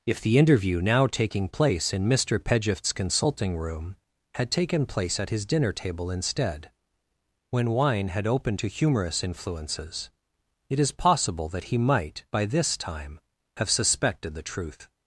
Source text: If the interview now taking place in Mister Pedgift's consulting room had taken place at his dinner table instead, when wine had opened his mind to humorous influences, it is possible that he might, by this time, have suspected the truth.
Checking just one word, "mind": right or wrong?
wrong